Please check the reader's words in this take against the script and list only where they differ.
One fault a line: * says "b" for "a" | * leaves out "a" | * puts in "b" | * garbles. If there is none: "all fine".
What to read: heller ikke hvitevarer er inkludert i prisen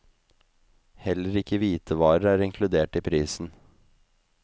all fine